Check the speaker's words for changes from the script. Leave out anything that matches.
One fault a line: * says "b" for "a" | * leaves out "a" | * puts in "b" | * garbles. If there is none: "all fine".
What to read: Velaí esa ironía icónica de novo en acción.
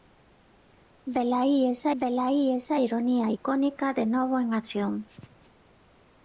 * puts in "velaí esa"